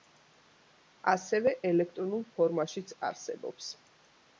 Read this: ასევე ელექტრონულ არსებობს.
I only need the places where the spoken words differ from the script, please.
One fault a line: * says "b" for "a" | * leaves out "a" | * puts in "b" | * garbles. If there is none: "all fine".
* puts in "ფორმაშიც"